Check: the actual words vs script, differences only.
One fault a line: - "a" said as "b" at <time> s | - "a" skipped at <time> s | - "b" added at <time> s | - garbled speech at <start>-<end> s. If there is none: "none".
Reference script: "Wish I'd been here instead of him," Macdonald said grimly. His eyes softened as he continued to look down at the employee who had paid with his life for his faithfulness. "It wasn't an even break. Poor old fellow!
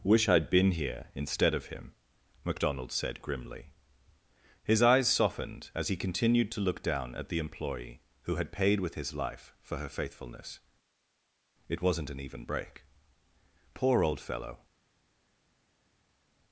- "his" said as "her" at 9.8 s